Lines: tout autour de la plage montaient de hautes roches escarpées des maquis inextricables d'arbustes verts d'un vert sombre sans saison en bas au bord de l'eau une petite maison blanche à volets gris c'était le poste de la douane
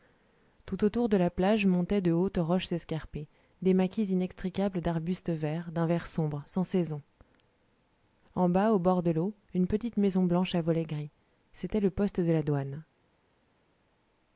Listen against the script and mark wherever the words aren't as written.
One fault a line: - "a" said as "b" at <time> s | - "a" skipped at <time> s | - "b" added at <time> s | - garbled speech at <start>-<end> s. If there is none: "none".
none